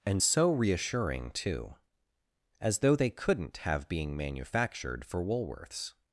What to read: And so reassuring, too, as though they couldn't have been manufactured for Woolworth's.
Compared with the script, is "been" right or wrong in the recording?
wrong